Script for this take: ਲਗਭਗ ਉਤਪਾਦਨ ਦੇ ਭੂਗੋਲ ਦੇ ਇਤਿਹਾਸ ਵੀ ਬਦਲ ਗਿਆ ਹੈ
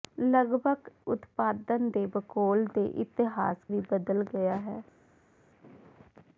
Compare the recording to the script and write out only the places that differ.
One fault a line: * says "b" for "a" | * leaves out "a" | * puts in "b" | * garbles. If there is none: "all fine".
all fine